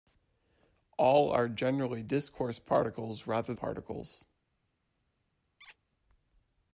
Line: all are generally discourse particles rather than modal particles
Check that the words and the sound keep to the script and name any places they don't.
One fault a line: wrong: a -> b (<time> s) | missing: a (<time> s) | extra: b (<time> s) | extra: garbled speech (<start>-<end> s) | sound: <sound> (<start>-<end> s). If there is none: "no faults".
missing: than modal (3.5 s)
sound: squeak (5.6-5.8 s)